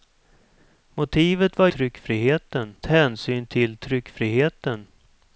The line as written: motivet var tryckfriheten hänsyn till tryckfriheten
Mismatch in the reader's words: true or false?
false